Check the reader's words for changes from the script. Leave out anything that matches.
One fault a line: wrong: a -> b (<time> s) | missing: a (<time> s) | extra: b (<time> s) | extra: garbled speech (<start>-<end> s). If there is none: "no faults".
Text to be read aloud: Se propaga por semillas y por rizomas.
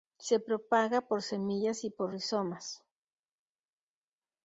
no faults